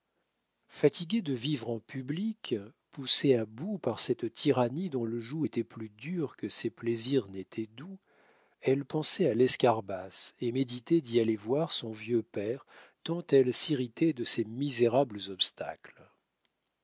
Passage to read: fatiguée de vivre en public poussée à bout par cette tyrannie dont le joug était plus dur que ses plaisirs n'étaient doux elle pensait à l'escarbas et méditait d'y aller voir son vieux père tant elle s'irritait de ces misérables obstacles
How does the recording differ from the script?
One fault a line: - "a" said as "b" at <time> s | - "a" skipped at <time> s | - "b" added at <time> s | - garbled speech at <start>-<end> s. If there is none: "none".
none